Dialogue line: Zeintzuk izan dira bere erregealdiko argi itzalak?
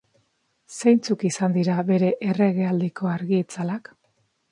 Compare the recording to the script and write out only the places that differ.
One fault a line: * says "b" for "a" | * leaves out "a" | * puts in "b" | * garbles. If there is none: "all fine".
all fine